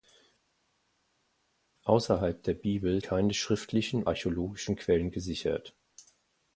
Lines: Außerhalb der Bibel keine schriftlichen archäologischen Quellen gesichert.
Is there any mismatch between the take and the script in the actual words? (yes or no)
no